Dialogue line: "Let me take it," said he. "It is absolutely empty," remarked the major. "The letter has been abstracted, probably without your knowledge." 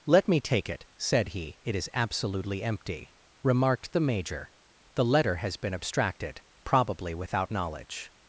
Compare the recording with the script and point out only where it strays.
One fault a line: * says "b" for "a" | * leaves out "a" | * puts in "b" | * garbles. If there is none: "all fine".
* leaves out "your"